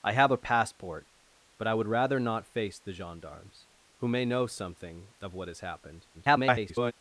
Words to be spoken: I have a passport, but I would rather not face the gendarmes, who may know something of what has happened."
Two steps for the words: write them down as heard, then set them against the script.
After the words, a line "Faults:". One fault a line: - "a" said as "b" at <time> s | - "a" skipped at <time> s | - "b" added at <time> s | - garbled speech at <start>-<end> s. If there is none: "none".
I have a passport, but I would rather not face the gendarmes, who may know something of what has happened." [garbled]
Faults:
- garbled speech at 6.1-6.9 s